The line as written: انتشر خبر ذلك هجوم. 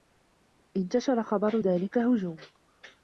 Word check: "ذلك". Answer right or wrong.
right